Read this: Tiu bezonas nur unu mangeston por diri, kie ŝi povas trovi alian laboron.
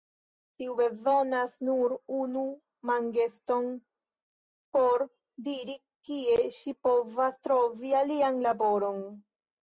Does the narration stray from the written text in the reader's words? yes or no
no